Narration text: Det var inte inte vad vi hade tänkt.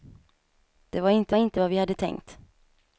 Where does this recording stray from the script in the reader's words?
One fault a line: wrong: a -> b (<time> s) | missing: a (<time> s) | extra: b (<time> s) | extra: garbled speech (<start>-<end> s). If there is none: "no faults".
no faults